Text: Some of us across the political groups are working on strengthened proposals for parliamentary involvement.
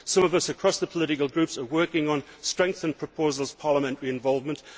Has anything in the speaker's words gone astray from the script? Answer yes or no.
yes